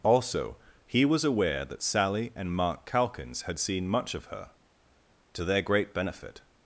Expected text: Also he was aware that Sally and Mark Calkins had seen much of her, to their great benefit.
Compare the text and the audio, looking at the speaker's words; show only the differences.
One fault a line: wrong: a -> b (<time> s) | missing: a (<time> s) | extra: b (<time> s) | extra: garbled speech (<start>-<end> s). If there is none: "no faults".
no faults